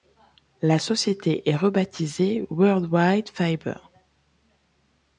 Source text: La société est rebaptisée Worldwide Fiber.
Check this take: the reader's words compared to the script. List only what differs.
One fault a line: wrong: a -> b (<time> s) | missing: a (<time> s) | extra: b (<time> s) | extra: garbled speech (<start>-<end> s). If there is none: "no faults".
no faults